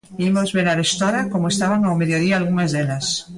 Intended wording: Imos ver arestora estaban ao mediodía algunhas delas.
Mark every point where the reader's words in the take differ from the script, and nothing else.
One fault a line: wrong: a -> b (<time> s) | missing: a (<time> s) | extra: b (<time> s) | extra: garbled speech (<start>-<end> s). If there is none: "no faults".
extra: como (1.3 s)